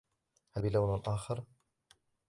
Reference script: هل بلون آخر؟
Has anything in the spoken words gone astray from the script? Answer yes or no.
no